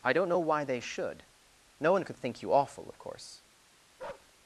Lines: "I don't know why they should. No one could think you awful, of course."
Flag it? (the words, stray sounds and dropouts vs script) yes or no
yes